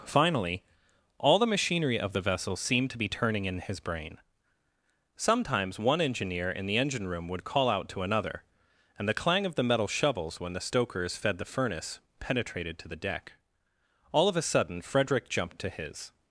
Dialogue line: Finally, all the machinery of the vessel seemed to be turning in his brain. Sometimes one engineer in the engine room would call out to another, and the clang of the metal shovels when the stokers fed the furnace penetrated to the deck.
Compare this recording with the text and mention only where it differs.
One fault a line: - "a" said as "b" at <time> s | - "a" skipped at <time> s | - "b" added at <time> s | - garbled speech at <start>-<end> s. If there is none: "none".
- "All of a sudden Frederick jumped to his" added at 14.1 s